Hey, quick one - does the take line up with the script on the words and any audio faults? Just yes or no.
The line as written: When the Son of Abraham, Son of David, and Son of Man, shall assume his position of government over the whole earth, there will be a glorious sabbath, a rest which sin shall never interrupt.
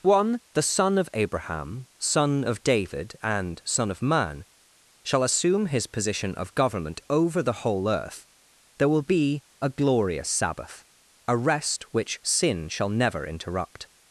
no